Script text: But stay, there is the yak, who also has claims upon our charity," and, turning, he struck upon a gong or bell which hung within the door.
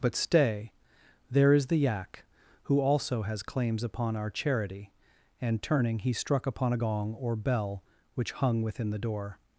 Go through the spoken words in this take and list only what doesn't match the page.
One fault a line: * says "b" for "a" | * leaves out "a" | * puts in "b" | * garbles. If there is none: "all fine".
all fine